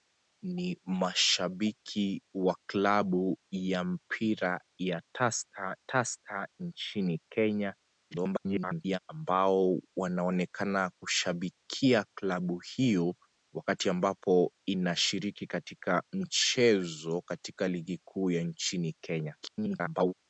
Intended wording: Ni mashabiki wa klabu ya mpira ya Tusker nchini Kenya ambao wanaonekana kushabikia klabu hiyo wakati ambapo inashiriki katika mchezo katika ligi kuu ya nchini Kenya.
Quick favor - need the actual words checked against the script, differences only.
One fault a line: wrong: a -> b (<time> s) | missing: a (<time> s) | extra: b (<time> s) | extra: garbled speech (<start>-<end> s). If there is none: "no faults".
extra: Tusker (5.9 s)
extra: garbled speech (8.1-9.0 s)
extra: garbled speech (19.4-20.1 s)